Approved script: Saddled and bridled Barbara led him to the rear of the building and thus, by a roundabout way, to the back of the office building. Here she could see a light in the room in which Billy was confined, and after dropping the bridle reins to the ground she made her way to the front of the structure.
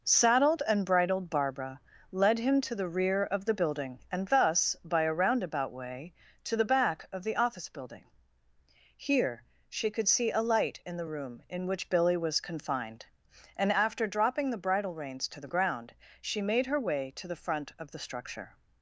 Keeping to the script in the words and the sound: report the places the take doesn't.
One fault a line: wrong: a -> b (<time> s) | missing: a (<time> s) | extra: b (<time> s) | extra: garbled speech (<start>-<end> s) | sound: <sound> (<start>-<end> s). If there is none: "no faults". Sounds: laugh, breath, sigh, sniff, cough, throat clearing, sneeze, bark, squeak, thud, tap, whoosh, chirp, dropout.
no faults